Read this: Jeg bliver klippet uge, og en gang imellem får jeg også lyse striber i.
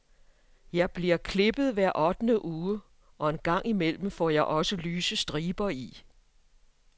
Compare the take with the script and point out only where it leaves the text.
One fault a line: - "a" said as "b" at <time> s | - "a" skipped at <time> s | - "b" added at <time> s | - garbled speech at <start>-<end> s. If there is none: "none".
- "hver ottende" added at 1.7 s